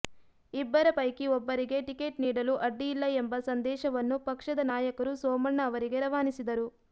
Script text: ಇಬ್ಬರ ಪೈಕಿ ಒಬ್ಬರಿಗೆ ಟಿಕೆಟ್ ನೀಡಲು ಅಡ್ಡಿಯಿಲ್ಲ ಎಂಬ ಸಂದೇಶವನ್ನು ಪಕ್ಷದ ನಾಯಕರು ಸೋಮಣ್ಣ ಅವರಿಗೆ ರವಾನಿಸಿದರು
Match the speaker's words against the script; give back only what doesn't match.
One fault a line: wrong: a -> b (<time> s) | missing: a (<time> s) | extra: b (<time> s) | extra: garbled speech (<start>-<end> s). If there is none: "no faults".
no faults